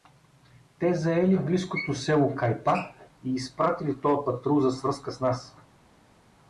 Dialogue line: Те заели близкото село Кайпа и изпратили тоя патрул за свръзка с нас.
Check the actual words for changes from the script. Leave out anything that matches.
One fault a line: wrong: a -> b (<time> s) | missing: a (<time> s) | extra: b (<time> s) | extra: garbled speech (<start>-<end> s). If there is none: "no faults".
no faults